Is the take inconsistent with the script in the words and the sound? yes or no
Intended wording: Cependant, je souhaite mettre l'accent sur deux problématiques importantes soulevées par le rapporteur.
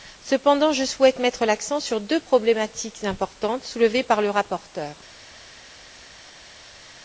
no